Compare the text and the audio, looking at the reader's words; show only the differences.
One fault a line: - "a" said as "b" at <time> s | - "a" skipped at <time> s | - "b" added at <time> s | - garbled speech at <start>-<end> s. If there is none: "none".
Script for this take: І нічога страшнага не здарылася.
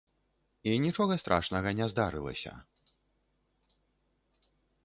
none